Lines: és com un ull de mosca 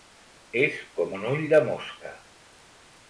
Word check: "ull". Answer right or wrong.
right